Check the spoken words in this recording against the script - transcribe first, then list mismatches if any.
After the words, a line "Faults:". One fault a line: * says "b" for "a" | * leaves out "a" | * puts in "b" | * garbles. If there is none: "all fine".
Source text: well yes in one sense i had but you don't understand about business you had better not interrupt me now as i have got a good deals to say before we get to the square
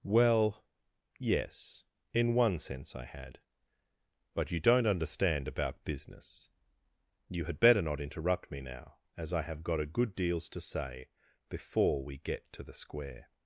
well yes in one sense i had but you don't understand about business you had better not interrupt me now as i have got a good deals to say before we get to the square
Faults:
all fine